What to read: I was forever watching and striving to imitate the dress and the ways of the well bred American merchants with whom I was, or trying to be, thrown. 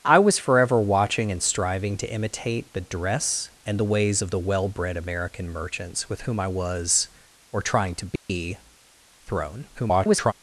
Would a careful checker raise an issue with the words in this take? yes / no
yes